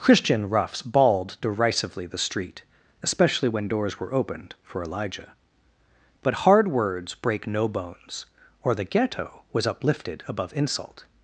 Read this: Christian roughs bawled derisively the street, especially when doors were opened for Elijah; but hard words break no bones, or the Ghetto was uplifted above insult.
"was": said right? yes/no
yes